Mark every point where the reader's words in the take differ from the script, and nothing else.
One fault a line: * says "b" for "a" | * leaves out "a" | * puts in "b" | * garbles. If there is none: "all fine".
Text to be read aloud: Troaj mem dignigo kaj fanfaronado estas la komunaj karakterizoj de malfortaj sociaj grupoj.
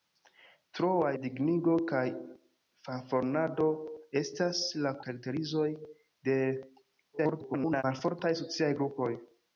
* leaves out "mem"
* leaves out "komunaj"
* garbles